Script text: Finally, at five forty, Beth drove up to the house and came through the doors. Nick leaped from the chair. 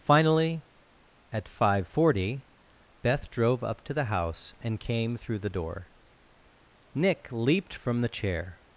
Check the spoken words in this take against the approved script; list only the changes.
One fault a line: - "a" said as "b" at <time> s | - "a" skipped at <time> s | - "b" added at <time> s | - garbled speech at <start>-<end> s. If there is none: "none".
- "doors" said as "door" at 5.5 s